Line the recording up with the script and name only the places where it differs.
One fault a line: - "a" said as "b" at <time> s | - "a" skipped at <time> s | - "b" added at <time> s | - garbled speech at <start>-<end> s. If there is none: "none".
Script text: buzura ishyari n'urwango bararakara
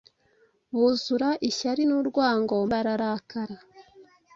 none